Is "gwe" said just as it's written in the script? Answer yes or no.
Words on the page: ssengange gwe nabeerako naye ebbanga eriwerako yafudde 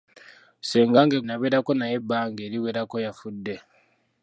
no